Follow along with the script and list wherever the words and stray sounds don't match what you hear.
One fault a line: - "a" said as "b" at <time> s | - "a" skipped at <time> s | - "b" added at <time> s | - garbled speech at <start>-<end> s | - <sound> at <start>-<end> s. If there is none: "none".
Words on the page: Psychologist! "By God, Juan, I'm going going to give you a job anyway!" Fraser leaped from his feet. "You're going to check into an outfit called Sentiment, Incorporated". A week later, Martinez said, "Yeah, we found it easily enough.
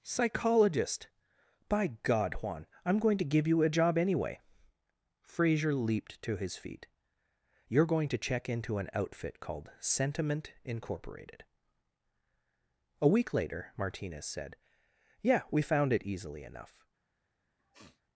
- "going" skipped at 3.2 s
- "from" said as "to" at 6.2 s
- sniff at 17.6-18.0 s